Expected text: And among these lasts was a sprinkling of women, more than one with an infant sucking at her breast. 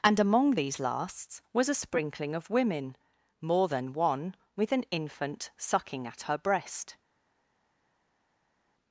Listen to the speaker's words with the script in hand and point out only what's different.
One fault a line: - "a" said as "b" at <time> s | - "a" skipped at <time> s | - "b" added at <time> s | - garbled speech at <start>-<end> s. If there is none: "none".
none